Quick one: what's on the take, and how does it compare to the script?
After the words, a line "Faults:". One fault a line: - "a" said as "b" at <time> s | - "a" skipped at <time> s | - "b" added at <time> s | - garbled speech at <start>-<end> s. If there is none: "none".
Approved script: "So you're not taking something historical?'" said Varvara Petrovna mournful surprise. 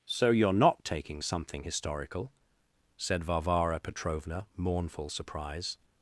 "So you're not taking something historical?'" said Varvara Petrovna mournful surprise.
Faults:
none